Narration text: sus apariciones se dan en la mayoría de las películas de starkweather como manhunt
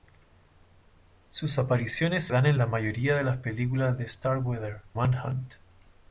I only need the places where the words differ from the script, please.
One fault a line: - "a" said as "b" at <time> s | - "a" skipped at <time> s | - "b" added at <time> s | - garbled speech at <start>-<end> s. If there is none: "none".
- "se" skipped at 2.3 s
- "como" skipped at 4.8 s